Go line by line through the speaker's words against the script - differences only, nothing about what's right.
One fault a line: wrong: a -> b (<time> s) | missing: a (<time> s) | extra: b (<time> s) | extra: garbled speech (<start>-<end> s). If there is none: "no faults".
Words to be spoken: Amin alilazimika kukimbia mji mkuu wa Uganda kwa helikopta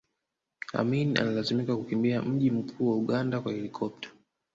no faults